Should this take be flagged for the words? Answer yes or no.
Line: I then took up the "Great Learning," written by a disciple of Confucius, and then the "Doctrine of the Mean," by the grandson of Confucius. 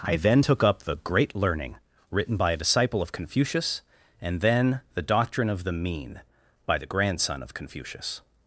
no